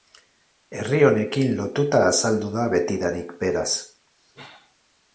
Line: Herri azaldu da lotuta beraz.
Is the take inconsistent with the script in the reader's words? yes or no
yes